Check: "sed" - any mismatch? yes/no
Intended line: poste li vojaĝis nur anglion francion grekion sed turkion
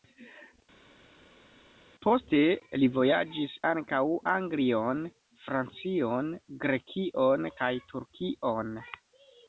yes